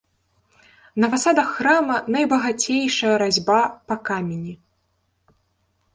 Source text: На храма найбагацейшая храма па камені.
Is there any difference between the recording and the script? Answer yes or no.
yes